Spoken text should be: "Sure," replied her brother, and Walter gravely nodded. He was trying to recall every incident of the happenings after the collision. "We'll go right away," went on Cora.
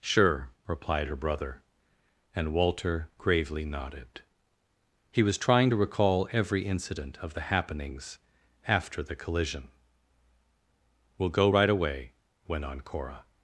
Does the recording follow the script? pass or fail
pass